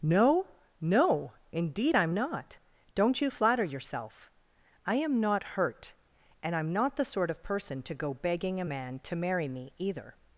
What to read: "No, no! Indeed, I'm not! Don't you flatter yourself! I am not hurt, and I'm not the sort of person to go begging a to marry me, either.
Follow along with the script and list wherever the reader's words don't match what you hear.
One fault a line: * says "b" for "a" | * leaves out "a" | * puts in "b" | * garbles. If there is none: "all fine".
* puts in "man"